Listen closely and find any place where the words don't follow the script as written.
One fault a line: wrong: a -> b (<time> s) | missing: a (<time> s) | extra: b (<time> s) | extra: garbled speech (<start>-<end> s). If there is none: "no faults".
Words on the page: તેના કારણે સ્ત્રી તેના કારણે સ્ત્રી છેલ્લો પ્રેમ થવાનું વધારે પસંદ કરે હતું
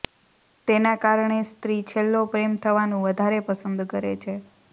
missing: તેના કારણે સ્ત્રી (1.8 s)
wrong: હતું -> છે (4.2 s)